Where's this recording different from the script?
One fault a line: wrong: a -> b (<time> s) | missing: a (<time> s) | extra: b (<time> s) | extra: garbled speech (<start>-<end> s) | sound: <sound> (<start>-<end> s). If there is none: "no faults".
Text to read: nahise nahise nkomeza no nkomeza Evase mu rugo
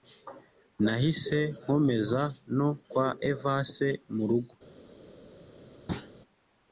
missing: nahise (1.4 s)
wrong: nkomeza -> kwa (2.9 s)
sound: thud (5.9-6.1 s)